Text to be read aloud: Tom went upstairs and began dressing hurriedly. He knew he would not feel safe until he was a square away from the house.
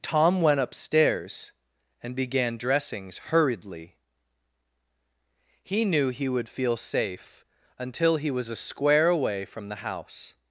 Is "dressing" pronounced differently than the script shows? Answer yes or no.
yes